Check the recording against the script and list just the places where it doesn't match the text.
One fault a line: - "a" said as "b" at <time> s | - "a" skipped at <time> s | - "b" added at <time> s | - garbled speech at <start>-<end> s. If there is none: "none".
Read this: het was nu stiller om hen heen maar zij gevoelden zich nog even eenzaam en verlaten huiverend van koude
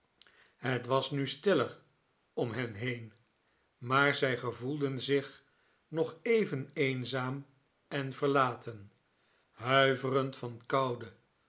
none